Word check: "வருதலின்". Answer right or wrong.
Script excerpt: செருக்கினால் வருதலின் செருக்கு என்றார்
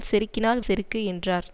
wrong